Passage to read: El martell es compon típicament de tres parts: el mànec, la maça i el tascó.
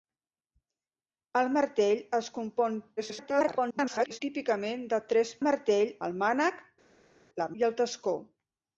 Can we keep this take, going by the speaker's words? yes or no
no